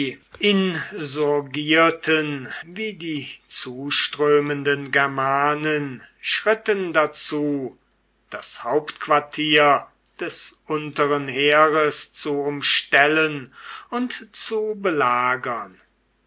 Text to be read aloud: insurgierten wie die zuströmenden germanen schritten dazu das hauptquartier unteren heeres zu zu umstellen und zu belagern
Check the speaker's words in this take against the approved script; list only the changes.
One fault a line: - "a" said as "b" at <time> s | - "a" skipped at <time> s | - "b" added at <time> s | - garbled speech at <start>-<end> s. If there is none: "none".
- "des" added at 10.2 s
- "zu" skipped at 12.4 s